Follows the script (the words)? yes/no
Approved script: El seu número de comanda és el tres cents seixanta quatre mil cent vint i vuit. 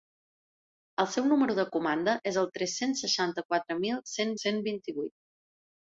no